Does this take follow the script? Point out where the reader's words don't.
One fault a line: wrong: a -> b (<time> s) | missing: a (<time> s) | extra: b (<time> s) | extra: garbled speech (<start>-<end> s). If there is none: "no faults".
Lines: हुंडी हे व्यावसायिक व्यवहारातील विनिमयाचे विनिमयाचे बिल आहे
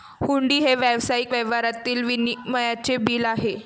missing: विनिमयाचे (3.0 s)